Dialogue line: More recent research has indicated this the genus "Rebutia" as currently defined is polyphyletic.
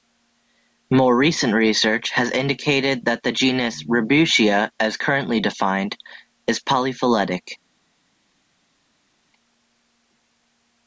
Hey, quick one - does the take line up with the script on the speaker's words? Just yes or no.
no